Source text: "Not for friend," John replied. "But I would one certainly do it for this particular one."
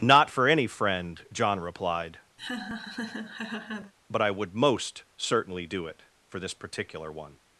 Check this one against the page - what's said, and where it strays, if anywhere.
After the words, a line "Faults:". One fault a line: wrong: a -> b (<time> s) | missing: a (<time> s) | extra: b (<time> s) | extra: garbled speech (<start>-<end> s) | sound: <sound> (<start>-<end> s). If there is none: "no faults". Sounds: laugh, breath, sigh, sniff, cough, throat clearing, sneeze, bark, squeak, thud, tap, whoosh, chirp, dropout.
"Not for any friend," John replied. "But I would most certainly do it for this particular one."
Faults:
extra: any (0.5 s)
sound: laugh (2.4-3.9 s)
wrong: one -> most (4.5 s)